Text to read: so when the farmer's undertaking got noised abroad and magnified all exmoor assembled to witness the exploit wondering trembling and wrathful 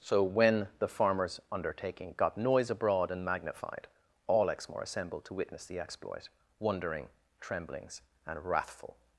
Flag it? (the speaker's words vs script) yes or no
yes